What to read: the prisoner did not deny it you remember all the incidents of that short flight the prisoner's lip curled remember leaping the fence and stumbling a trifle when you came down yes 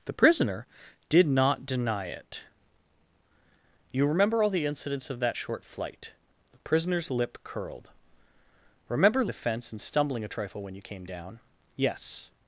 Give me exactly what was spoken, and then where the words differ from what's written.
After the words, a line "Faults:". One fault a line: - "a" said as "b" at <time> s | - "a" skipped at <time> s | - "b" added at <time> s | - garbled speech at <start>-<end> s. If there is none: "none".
the prisoner did not deny it you remember all the incidents of that short flight the prisoner's lip curled remember the fence and stumbling a trifle when you came down yes
Faults:
- "leaping" skipped at 9.2 s